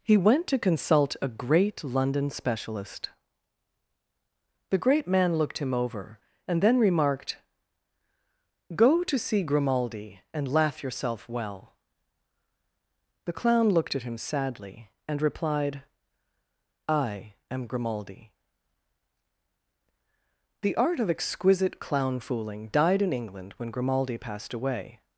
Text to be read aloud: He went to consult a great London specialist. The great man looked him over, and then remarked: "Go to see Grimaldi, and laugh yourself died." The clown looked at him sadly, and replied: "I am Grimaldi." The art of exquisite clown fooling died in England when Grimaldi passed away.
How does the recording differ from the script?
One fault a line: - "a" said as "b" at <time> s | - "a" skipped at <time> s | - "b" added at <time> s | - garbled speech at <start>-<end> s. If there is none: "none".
- "died" said as "well" at 11.3 s